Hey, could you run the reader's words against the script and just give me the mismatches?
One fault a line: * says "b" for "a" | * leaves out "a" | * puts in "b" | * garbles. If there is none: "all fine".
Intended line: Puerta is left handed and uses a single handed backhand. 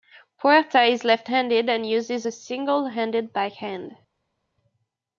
all fine